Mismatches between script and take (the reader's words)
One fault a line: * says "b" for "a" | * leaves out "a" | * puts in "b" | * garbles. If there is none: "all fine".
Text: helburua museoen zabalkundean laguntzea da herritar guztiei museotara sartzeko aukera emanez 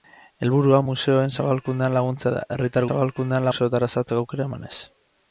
* says "zabalkundean" for "guztiei"